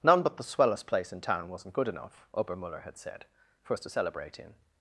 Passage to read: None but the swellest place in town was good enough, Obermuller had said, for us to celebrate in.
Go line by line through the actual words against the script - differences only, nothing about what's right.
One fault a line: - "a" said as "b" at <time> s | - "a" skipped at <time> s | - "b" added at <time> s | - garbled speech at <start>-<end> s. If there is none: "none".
- "was" said as "wasn't" at 1.5 s